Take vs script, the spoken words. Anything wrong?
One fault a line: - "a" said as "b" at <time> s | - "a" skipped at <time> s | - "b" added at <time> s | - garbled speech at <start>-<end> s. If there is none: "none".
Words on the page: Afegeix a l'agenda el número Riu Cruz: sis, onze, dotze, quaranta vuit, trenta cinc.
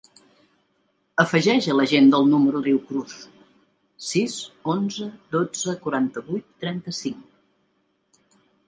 none